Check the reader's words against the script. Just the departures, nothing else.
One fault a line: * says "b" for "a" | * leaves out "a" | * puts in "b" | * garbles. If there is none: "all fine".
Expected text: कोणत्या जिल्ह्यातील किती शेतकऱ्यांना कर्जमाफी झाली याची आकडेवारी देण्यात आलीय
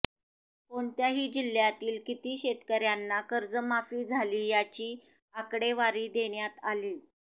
all fine